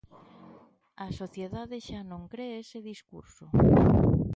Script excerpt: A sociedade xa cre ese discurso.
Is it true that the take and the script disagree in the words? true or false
true